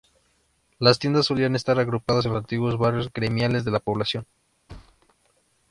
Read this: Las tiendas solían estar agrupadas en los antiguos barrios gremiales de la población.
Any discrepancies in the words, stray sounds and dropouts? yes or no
yes